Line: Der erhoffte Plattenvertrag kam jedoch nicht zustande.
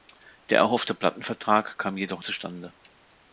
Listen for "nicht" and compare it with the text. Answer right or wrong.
wrong